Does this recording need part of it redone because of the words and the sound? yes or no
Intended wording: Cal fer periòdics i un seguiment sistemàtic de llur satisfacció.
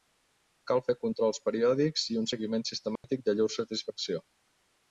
yes